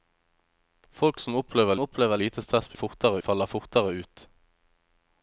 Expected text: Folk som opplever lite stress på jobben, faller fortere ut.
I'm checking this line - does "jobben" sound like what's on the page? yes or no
no